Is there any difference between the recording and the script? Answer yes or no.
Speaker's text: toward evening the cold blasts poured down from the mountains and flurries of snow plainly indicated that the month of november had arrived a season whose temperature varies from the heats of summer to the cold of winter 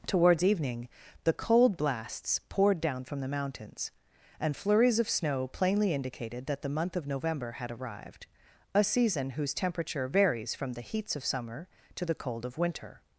yes